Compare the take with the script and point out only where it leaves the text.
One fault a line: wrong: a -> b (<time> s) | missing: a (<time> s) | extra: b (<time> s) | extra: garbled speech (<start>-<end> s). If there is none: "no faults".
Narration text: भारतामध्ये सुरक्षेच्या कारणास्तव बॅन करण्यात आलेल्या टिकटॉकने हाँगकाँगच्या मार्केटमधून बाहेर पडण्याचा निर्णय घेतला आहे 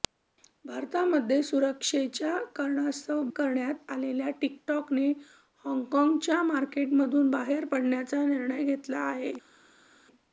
missing: बॅन (3.2 s)